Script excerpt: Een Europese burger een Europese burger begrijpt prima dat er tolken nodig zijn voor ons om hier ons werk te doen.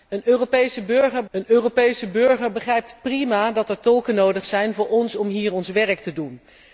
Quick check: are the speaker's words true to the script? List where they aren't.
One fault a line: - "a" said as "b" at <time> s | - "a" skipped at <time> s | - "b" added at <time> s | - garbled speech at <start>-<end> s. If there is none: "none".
none